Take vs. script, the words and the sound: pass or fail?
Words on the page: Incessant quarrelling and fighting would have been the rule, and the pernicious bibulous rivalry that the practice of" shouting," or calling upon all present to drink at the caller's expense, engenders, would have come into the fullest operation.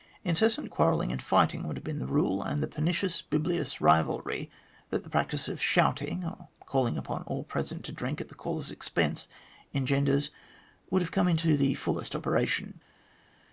pass